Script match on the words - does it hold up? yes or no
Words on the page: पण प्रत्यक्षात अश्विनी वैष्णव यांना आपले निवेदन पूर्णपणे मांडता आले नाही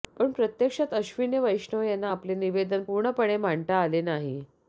yes